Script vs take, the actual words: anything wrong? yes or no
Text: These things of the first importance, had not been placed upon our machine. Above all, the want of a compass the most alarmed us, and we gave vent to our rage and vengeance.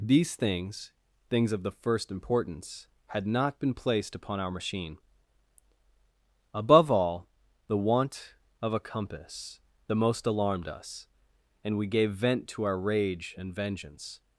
yes